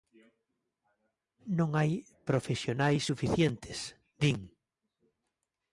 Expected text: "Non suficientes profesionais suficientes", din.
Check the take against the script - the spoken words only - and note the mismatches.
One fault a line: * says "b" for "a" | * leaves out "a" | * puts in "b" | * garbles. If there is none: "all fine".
* says "hai" for "suficientes"